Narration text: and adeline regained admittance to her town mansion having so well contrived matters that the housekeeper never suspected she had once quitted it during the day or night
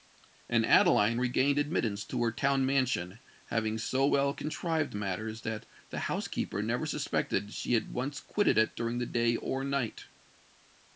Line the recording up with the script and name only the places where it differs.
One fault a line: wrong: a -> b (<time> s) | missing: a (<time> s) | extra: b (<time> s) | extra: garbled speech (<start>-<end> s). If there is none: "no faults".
no faults